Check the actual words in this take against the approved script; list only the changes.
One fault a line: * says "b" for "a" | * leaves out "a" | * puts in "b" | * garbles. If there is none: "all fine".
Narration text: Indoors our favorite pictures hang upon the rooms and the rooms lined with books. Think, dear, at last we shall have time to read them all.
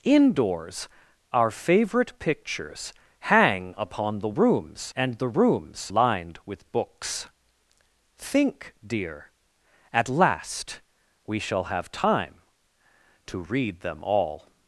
all fine